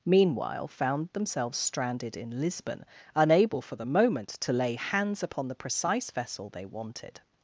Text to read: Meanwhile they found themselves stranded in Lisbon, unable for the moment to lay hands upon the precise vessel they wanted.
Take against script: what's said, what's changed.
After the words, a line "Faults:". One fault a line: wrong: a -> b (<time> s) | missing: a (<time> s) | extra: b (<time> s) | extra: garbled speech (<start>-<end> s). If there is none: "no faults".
Meanwhile found themselves stranded in Lisbon, unable for the moment to lay hands upon the precise vessel they wanted.
Faults:
missing: they (0.7 s)